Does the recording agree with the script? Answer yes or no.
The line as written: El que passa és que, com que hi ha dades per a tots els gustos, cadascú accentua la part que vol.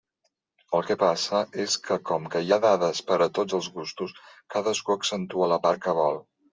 yes